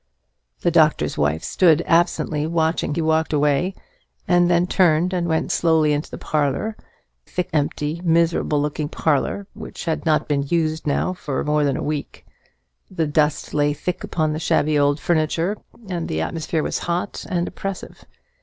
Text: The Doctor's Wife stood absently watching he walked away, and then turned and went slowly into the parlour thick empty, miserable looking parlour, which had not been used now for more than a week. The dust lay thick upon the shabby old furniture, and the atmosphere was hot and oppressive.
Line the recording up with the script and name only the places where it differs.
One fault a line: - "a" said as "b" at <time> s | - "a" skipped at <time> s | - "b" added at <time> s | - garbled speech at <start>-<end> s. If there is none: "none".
none